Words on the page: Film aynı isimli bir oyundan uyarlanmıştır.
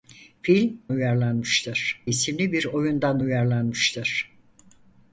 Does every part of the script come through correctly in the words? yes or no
no